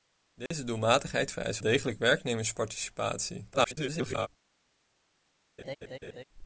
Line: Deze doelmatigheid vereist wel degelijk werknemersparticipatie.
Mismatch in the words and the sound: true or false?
true